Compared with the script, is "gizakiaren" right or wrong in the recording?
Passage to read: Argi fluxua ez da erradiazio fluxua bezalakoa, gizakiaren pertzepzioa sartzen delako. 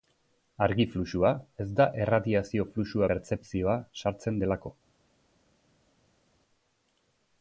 wrong